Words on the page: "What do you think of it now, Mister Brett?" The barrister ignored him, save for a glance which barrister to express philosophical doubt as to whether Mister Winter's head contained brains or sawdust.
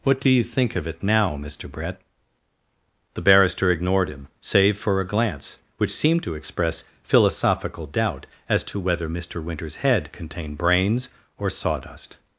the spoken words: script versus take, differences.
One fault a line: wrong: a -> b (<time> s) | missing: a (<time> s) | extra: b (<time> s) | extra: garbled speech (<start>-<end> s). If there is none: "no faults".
wrong: barrister -> seemed (5.9 s)